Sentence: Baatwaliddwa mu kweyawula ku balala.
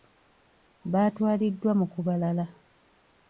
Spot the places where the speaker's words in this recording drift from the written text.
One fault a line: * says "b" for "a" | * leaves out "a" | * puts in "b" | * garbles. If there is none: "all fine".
* leaves out "kweyawula"